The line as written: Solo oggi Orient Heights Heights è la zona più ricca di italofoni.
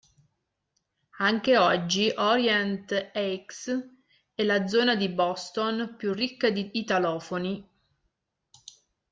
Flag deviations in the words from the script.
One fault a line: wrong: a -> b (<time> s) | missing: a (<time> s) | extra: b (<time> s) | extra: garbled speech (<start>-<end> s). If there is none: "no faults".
wrong: Solo -> Anche (1.2 s)
missing: Heights (3.9 s)
extra: di Boston (5.0 s)